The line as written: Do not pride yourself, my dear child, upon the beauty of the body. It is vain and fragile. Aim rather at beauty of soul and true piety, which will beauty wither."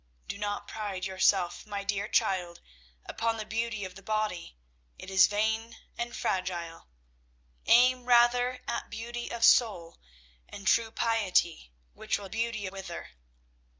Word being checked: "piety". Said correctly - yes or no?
yes